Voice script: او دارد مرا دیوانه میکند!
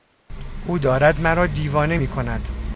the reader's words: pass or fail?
pass